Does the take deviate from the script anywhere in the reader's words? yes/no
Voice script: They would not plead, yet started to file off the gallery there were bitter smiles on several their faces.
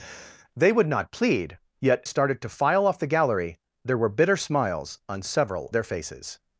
no